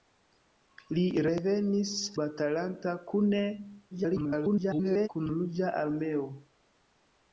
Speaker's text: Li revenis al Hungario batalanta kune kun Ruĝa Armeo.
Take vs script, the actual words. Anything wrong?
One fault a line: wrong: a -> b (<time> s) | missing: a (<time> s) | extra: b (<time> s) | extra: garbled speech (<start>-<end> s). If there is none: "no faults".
missing: al Hungario (1.9 s)
extra: garbled speech (3.9-5.1 s)